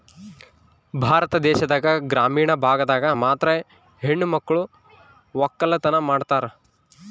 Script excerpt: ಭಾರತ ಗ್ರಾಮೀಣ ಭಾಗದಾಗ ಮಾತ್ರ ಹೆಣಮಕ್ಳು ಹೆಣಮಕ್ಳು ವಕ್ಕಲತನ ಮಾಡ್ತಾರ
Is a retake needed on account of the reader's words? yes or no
yes